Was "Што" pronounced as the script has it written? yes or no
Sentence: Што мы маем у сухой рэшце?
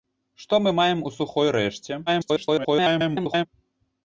yes